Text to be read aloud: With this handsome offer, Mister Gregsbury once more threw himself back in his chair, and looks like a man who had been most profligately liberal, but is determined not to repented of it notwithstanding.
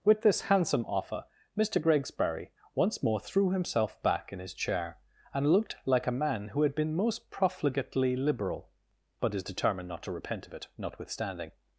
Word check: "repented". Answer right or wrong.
wrong